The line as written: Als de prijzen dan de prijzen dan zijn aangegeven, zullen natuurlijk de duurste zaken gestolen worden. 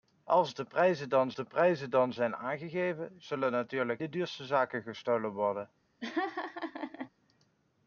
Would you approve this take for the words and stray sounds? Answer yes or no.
no